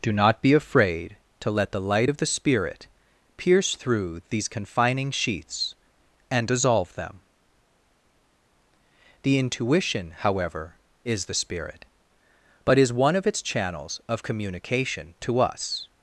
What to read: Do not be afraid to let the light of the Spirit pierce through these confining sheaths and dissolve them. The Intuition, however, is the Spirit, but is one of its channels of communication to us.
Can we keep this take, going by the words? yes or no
yes